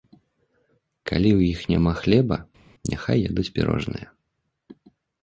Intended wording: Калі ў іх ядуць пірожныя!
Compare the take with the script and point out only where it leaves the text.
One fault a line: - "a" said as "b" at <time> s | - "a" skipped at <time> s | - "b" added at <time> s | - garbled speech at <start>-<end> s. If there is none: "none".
- "няма хлеба няхай" added at 1.7 s